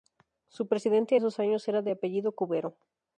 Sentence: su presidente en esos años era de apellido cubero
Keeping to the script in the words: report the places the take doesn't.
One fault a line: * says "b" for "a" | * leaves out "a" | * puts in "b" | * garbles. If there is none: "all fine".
* leaves out "en"